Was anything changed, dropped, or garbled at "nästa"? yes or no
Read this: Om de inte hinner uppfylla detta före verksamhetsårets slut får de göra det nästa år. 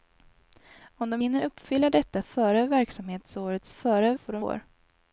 yes